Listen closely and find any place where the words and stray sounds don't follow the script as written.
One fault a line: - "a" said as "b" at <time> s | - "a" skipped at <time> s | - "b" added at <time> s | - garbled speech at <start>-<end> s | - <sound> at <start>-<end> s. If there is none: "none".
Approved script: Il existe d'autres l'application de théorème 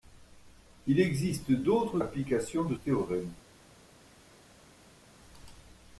none